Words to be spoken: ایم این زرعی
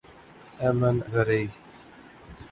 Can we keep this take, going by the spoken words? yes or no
yes